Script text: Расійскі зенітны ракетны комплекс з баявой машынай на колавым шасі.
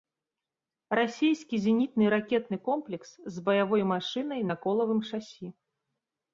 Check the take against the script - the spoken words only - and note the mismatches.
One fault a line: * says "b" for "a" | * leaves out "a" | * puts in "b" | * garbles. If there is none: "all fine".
all fine